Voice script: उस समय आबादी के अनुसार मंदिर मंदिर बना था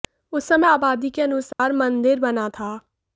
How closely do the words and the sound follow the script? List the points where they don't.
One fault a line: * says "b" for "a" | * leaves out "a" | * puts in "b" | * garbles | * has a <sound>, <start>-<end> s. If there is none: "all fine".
* has a dropout, 1.5-1.6 s
* leaves out "मंदिर"